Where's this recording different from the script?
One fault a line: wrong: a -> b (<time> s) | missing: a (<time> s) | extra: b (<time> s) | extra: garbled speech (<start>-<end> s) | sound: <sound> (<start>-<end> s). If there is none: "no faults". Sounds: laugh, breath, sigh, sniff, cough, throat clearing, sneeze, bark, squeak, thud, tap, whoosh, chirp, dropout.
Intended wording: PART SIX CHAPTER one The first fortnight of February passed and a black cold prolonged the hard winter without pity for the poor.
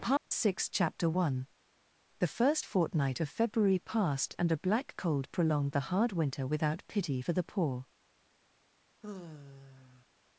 sound: dropout (0.2-0.3 s)
sound: sigh (9.0-10.1 s)